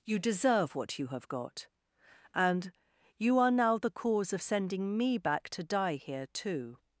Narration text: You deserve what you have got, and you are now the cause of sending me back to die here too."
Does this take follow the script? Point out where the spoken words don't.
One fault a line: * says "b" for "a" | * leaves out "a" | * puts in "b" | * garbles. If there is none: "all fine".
all fine